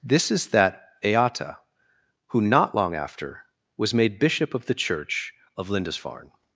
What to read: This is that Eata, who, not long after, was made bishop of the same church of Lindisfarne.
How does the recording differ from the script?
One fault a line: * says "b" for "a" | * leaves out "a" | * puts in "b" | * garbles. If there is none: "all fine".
* leaves out "same"